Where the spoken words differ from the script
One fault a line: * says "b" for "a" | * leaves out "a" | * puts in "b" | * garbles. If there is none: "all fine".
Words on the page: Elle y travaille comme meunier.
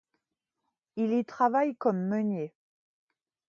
* says "Il" for "Elle"